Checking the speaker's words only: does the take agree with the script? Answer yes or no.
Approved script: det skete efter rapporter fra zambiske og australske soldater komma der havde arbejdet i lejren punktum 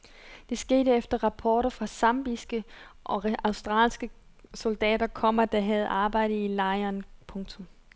yes